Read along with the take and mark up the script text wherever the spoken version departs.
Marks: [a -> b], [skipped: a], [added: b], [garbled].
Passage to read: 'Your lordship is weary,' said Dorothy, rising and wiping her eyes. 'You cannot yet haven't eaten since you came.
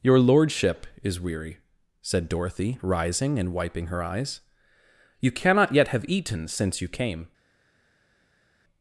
'Your lordship is weary,' said Dorothy, rising and wiping her eyes. 'You cannot yet [haven't -> have] eaten since you came.